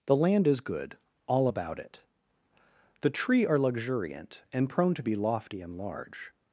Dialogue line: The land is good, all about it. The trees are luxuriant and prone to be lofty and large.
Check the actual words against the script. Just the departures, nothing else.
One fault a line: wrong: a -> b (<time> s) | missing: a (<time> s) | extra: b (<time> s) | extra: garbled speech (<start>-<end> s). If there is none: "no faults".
wrong: trees -> tree (3.1 s)